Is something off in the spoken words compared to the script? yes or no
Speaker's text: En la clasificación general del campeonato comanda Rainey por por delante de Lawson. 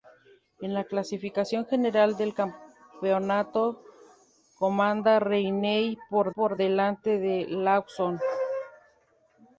no